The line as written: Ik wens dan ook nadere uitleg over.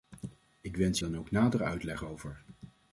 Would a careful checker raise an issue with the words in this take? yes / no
no